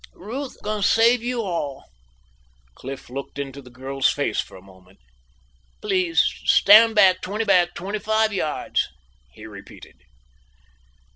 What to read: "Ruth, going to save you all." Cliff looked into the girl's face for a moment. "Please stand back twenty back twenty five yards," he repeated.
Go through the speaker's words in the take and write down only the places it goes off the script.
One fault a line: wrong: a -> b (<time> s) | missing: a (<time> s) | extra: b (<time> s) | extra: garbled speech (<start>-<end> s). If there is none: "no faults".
no faults